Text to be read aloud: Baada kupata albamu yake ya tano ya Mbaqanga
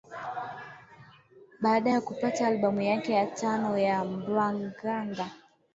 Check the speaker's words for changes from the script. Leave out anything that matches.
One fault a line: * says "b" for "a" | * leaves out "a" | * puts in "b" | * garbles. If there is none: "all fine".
* puts in "ya"